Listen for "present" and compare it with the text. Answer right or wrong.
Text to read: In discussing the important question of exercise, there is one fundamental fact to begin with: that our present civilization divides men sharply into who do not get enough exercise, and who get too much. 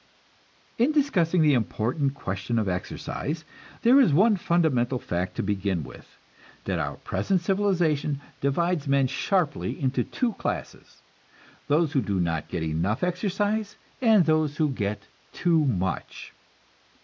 right